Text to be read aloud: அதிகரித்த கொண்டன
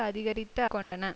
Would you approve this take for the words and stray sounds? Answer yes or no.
no